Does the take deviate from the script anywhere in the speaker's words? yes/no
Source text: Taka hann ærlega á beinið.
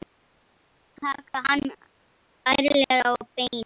no